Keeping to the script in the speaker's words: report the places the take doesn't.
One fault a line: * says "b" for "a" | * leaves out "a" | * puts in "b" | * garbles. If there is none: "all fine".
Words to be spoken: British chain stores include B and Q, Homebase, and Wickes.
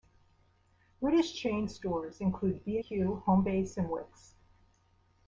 * leaves out "and"